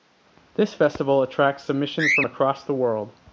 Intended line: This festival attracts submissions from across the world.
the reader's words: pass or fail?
pass